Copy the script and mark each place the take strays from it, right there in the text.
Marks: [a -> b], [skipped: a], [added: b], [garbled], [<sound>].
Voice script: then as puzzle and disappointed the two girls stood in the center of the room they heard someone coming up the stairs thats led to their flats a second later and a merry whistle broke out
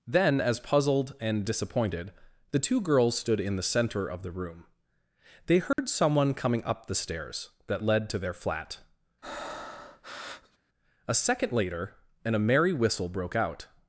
then as [puzzle -> puzzled] and disappointed the two girls stood in the center of the room they heard [dropout] someone coming up the stairs [thats -> that] led to their [flats -> flat] [breath] a second later and a merry whistle broke out